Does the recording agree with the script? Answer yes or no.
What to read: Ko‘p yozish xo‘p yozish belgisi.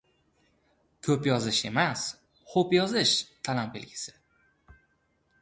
no